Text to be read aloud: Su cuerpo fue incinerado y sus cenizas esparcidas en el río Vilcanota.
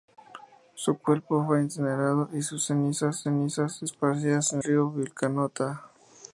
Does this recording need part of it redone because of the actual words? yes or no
yes